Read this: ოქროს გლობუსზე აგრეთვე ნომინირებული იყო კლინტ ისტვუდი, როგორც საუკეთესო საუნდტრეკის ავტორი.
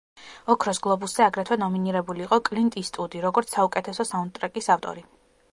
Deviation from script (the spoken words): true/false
false